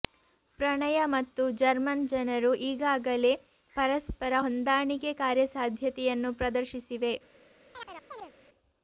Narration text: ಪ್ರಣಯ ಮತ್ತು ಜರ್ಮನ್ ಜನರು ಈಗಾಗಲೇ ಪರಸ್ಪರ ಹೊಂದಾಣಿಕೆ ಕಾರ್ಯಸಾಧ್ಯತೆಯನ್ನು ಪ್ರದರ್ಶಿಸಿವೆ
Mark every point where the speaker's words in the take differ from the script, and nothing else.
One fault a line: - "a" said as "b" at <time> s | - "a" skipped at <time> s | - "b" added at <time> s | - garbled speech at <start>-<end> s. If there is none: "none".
none